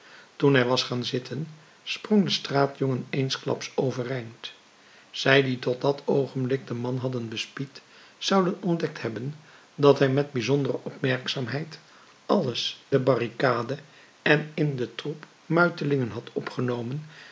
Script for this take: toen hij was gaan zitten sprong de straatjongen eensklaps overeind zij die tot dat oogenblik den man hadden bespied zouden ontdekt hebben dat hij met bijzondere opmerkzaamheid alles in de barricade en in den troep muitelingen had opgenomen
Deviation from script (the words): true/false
true